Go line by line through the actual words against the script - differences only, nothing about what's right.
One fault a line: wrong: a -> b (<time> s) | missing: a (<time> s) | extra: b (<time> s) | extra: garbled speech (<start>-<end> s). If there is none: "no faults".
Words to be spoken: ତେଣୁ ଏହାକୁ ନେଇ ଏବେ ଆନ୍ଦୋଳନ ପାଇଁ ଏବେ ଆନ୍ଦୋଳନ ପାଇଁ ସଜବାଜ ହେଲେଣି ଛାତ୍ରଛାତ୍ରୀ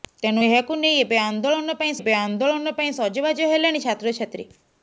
no faults